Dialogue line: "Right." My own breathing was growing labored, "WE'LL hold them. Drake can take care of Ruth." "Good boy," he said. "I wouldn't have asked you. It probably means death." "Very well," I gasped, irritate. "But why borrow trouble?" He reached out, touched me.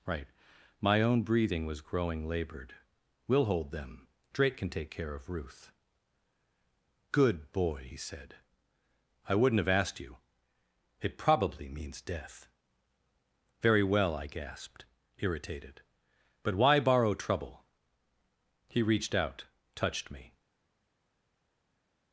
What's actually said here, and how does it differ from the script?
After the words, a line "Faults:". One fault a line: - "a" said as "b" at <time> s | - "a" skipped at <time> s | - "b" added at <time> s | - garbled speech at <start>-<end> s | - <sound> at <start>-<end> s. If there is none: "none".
"Right." My own breathing was growing labored, "WE'LL hold them. Drake can take care of Ruth." "Good boy," he said. "I wouldn't have asked you. It probably means death." "Very well," I gasped, irritated. "But why borrow trouble?" He reached out, touched me.
Faults:
- "irritate" said as "irritated" at 15.2 s